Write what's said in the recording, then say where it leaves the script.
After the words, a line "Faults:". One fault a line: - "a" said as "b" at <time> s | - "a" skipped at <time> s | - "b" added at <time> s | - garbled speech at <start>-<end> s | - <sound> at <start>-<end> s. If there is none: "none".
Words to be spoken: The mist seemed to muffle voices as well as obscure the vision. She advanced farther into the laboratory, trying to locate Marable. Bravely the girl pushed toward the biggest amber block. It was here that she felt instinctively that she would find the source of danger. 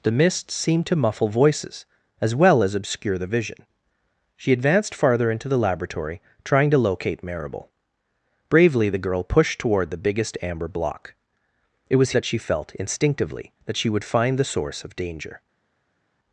The mist seemed to muffle voices as well as obscure the vision. She advanced farther into the laboratory, trying to locate Marable. Bravely the girl pushed toward the biggest amber block. It was that she felt instinctively that she would find the source of danger.
Faults:
- "here" skipped at 12.1 s